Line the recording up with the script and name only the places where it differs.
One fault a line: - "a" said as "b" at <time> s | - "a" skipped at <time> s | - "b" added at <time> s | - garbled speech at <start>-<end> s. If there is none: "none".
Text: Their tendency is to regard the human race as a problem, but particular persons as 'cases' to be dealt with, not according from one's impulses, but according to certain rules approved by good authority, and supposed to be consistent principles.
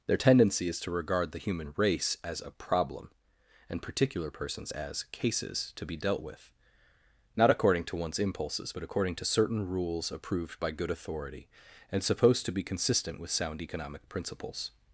- "but" said as "and" at 3.7 s
- "from" said as "to" at 7.9 s
- "with sound economic" added at 13.2 s